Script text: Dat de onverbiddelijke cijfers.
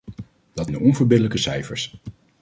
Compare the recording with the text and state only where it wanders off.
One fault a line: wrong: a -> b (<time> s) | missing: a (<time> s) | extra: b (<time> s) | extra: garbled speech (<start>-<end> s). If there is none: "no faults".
no faults